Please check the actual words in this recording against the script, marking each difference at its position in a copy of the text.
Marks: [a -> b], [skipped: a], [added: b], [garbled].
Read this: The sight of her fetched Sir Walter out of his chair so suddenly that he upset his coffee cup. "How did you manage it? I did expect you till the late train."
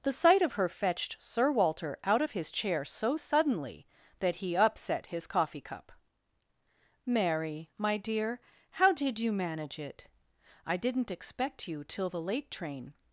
The sight of her fetched Sir Walter out of his chair so suddenly that he upset his coffee cup. [added: Mary my dear] "How did you manage it? I [did -> didn't] expect you till the late train."